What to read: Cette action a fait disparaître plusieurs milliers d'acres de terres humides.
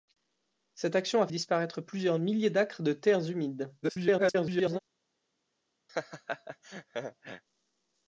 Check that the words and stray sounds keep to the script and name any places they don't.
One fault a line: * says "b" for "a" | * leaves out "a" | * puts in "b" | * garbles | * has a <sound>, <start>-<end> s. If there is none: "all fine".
* leaves out "fait"
* garbles
* has a laugh, 5.9-7.4 s